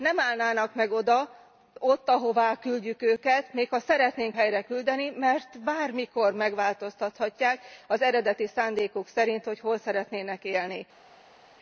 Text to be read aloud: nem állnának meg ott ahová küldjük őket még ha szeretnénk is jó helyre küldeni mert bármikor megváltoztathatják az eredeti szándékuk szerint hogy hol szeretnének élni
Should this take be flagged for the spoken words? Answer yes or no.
yes